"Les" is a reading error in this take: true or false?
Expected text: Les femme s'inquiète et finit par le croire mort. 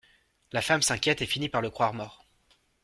true